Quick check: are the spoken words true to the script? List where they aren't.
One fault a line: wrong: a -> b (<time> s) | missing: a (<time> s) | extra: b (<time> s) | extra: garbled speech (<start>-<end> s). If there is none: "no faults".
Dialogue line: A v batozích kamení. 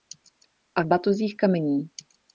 no faults